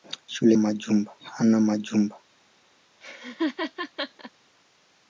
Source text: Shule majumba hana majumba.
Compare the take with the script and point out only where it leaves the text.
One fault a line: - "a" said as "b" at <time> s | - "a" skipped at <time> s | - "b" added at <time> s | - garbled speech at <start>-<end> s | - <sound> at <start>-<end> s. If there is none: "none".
- laugh at 3.0-4.3 s